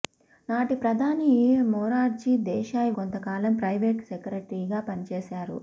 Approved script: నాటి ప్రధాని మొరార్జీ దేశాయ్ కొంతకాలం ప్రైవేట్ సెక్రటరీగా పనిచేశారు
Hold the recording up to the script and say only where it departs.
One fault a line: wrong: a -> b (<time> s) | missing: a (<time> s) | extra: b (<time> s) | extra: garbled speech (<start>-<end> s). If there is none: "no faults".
no faults